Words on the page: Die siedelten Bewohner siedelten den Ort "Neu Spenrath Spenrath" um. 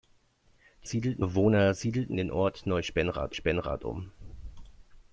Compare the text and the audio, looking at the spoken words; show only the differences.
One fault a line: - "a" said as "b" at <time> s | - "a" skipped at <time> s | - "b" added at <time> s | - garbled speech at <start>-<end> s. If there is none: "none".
none